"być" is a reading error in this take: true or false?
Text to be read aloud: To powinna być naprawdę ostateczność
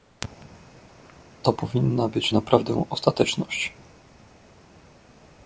false